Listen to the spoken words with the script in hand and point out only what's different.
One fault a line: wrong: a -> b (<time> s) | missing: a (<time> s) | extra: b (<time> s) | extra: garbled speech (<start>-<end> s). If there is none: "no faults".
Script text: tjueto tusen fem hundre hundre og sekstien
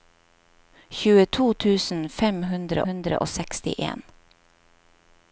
no faults